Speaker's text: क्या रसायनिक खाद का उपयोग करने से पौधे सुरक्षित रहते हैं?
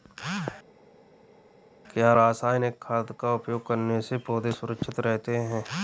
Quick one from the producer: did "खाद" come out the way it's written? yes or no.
yes